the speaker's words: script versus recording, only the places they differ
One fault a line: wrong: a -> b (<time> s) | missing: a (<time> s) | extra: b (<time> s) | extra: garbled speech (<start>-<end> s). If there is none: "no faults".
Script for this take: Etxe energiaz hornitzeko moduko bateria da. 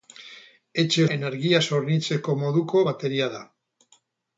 no faults